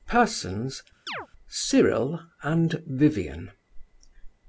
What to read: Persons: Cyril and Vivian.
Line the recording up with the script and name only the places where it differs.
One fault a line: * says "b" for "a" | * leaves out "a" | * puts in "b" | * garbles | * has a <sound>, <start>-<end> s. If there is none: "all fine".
* has a chirp, 1.1-1.3 s